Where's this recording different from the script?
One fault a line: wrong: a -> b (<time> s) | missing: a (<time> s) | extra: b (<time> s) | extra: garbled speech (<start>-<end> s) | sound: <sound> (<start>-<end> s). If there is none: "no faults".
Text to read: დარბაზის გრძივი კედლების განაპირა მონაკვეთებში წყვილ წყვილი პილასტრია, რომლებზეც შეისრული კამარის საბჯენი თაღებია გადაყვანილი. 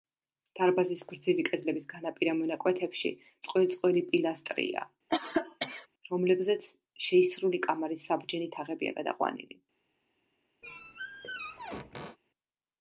sound: cough (5.1-5.9 s)
sound: squeak (10.6-12.2 s)